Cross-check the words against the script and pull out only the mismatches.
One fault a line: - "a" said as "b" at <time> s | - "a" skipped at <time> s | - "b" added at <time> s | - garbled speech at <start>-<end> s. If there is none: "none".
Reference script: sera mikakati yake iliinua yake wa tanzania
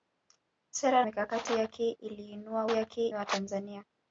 none